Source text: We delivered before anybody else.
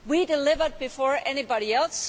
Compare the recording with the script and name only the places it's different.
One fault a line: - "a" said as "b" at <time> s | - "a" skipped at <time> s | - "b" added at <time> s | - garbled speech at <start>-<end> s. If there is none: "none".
none